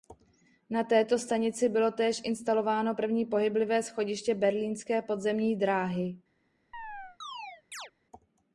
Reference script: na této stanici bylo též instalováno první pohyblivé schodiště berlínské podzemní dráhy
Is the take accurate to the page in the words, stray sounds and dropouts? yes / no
no